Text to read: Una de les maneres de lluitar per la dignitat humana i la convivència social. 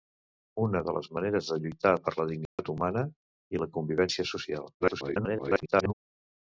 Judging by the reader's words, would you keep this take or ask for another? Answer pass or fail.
fail